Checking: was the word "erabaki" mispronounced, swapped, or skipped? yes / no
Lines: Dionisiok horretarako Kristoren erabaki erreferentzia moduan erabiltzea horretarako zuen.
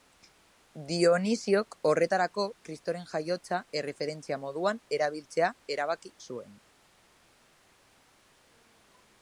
yes